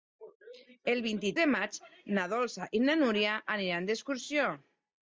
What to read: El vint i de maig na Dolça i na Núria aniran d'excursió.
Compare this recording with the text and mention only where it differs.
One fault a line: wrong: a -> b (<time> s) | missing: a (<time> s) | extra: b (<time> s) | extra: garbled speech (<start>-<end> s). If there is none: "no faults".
no faults